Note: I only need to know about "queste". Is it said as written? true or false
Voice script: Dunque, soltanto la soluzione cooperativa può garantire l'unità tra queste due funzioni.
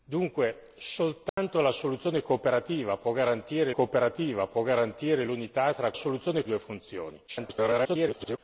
false